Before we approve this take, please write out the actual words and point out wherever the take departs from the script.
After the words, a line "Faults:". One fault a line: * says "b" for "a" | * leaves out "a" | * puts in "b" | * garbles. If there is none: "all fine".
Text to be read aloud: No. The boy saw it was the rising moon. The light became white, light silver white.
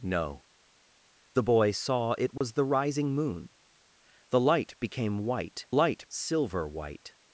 No. The boy saw it was the rising moon. The light became white, light silver white.
Faults:
all fine